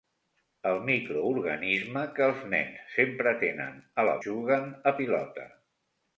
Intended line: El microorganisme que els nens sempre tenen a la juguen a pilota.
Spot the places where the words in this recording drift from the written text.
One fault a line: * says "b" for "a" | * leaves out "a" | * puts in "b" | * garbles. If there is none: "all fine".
all fine